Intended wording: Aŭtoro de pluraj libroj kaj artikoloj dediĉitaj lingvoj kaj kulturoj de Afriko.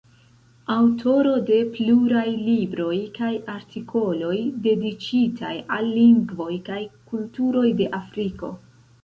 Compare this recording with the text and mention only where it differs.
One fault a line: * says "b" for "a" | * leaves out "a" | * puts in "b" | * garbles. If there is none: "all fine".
* puts in "al"